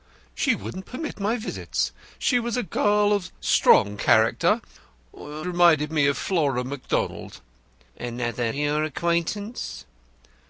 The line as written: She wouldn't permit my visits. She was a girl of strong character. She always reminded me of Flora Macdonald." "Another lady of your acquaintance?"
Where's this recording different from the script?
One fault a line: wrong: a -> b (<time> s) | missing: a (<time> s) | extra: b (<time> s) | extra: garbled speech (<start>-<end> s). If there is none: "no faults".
missing: She always (4.6 s)
missing: lady of (8.5 s)